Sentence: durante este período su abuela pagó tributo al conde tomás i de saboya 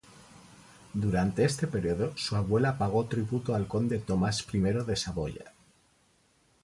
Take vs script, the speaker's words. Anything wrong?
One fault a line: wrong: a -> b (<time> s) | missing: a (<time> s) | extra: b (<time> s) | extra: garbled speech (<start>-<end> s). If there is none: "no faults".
no faults